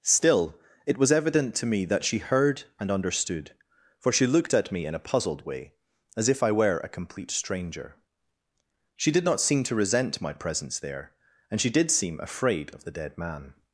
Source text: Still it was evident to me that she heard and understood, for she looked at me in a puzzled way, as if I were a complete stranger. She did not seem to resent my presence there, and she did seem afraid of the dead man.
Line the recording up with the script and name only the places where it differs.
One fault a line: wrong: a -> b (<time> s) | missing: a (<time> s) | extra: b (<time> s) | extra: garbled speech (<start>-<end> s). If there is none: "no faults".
no faults